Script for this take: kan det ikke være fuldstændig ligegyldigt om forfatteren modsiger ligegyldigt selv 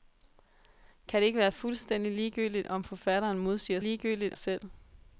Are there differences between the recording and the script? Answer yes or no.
no